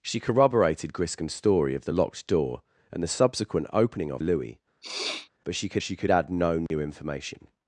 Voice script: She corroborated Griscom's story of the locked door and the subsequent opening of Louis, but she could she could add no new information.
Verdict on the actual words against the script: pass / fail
pass